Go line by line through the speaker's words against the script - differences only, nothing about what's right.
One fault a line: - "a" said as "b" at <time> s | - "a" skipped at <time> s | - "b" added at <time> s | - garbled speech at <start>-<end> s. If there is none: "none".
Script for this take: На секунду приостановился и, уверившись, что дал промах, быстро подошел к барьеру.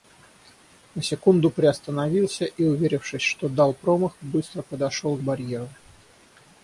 none